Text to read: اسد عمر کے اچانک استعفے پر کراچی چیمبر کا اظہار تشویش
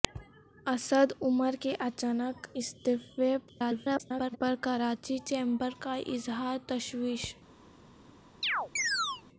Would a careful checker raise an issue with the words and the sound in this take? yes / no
yes